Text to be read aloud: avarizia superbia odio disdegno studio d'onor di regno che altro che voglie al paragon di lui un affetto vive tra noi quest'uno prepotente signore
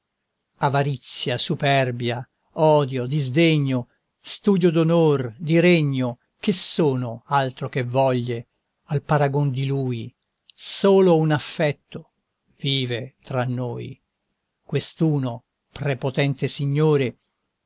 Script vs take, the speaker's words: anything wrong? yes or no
yes